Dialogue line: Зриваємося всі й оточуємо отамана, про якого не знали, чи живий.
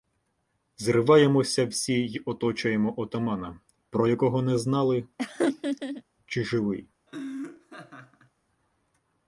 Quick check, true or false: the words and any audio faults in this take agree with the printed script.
false